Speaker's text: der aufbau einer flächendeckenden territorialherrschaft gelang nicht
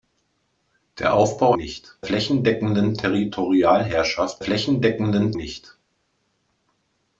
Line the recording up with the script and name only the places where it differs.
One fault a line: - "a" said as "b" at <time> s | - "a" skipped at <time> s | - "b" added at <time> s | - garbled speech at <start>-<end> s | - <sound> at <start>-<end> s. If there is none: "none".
- "einer" said as "nicht" at 1.6 s
- "gelang" said as "flächendeckenden" at 4.4 s